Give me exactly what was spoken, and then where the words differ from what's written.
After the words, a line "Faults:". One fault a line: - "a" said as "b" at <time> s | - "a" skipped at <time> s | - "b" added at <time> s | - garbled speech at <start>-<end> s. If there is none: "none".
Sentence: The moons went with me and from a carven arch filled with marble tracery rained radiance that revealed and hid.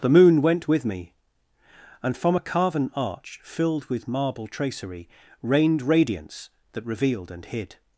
The moon went with me and from a carven arch filled with marble tracery rained radiance that revealed and hid.
Faults:
- "moons" said as "moon" at 0.1 s